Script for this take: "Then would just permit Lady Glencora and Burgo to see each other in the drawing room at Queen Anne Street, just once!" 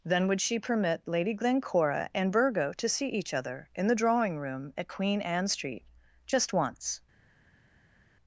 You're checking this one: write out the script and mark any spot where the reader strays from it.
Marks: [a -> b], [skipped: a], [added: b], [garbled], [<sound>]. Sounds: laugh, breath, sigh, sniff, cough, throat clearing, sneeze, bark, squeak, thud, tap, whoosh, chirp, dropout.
"Then would [just -> she] permit Lady Glencora and Burgo to see each other in the drawing room at Queen Anne Street, just once!"